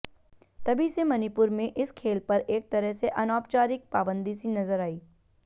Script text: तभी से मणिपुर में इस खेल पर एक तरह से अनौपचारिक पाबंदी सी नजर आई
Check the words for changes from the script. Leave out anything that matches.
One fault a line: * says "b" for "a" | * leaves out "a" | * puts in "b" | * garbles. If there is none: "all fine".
all fine